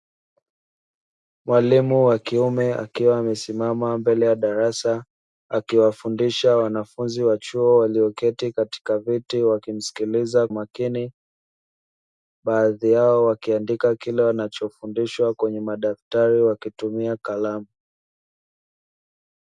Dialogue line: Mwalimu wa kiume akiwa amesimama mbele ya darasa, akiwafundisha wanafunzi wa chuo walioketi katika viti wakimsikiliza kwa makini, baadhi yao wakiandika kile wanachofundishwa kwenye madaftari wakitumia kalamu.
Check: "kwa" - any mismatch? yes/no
yes